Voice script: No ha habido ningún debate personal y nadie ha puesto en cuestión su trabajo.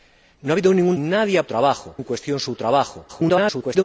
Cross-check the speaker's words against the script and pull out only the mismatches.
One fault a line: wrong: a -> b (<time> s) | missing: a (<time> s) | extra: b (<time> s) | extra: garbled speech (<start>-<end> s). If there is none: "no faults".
missing: debate personal y (0.9 s)
wrong: puesto -> trabajo (1.5 s)
extra: garbled speech (3.1-3.8 s)